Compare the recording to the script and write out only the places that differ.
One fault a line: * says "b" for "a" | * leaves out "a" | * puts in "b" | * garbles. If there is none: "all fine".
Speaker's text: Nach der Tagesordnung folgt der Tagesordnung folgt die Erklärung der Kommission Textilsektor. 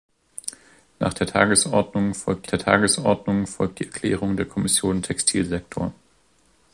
all fine